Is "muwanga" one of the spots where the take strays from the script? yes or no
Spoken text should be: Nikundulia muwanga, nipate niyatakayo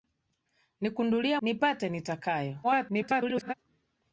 yes